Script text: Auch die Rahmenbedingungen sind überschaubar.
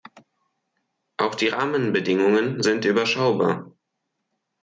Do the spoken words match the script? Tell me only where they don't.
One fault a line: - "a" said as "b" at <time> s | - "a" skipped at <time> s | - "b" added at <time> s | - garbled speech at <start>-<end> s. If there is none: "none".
none